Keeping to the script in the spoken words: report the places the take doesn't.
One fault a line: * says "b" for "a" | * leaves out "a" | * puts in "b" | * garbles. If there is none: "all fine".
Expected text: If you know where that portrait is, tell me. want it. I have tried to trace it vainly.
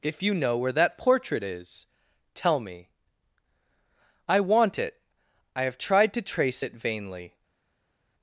* puts in "I"